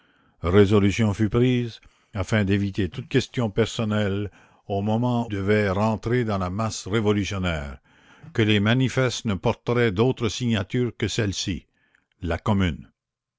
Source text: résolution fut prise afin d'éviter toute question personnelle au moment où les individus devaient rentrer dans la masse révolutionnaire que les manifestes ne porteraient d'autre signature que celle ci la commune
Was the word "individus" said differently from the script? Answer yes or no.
yes